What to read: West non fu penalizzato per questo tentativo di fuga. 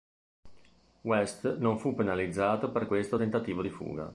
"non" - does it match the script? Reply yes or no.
yes